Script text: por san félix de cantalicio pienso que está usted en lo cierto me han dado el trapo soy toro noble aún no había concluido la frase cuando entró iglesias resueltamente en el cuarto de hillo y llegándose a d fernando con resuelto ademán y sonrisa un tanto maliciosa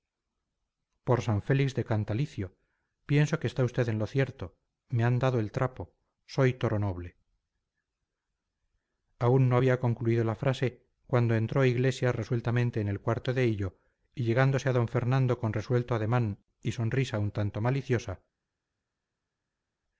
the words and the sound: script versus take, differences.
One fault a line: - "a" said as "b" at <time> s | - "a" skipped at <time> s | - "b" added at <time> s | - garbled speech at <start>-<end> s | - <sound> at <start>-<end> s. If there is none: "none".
none